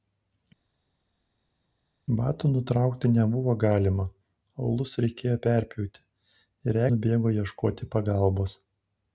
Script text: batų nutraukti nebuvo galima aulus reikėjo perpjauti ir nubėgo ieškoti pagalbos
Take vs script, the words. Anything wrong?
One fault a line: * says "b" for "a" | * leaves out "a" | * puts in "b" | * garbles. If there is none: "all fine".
all fine